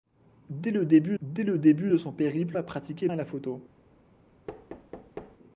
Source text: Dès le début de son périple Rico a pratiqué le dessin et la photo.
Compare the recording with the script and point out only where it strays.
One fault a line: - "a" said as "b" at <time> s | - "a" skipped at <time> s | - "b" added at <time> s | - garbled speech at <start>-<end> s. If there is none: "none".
- "dès le début" added at 1.2 s
- "Rico" skipped at 2.6 s
- "le dessin" skipped at 3.1 s